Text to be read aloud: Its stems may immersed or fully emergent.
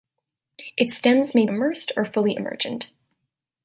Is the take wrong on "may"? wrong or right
right